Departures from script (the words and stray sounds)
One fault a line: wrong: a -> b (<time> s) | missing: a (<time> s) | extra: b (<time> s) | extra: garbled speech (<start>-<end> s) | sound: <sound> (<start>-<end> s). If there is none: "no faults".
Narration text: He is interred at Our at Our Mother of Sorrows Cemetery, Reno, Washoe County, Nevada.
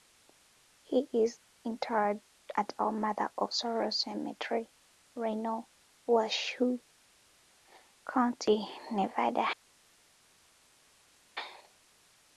missing: at Our (2.9 s)